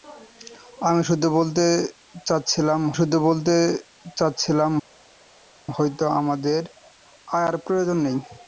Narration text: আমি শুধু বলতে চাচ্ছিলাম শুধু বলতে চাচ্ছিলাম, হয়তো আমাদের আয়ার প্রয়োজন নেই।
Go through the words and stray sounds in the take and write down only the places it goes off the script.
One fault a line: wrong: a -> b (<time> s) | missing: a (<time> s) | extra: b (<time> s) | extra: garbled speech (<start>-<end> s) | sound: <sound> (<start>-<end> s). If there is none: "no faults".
no faults